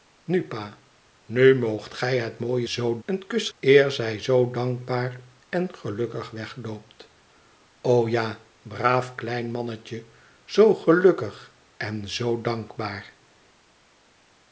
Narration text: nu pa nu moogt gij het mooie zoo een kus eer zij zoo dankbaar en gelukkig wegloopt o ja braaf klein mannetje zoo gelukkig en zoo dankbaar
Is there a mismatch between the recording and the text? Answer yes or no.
no